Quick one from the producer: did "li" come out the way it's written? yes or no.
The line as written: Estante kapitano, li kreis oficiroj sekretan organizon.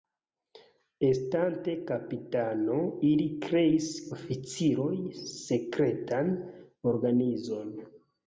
yes